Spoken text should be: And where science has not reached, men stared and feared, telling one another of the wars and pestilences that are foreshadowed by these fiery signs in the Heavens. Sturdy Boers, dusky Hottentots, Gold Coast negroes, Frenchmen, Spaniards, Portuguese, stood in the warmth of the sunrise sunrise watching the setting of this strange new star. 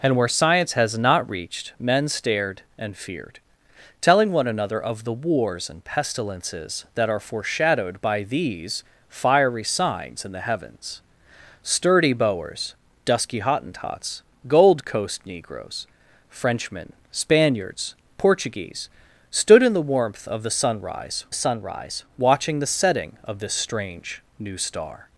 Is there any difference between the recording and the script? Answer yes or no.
no